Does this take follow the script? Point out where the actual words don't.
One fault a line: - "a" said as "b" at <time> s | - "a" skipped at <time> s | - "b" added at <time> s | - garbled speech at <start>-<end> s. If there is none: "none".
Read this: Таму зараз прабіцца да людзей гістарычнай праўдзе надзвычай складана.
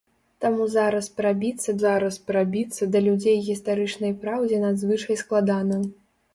- "зараз прабіцца" added at 1.8 s